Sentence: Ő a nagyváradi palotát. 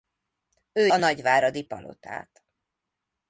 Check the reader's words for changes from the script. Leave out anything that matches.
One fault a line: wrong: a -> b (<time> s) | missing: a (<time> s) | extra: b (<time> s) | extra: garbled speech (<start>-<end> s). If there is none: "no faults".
no faults